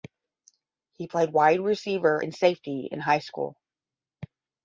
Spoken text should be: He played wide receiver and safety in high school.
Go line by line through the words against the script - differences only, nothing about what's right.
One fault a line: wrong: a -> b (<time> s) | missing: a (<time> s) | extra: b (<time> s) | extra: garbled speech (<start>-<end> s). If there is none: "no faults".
no faults